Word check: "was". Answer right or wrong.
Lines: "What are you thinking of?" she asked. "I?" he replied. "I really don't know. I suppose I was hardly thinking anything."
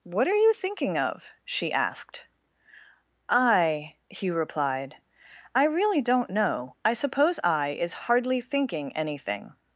wrong